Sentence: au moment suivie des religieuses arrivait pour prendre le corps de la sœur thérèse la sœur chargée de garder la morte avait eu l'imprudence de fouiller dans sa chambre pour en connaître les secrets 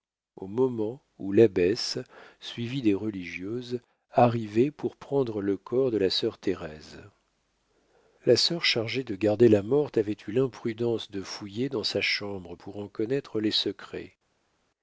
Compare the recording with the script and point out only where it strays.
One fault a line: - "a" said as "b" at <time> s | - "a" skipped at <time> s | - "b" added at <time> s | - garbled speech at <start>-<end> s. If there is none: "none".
- "où l'abbesse" added at 1.2 s